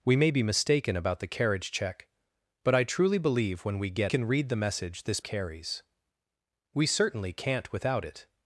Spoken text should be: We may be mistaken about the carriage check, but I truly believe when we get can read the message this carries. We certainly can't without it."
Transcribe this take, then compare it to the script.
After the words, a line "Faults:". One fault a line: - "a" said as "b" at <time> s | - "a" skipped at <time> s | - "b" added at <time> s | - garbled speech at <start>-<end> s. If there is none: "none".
We may be mistaken about the carriage check, but I truly believe when we get can read the message this carries. We certainly can't without it."
Faults:
none